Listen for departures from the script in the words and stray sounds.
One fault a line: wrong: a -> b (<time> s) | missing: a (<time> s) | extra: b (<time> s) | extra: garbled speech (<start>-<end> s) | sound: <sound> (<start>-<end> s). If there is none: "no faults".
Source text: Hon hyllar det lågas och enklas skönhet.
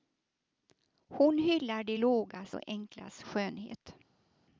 no faults